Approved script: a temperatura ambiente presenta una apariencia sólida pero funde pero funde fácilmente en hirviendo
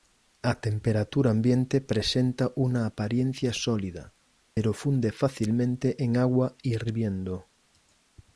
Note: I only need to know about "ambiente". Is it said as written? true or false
true